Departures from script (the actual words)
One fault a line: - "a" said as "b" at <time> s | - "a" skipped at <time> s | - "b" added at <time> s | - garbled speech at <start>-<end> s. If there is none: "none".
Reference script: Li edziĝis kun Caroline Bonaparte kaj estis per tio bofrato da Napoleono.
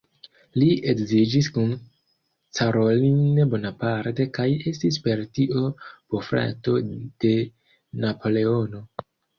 - "da" said as "de" at 6.9 s